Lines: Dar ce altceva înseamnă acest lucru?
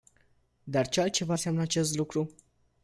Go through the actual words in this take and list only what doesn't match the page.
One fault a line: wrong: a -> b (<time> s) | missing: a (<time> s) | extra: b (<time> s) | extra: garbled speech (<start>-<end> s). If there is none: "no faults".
no faults